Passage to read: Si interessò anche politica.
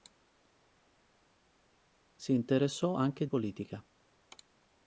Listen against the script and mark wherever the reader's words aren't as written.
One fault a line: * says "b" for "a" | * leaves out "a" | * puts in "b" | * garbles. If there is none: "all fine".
all fine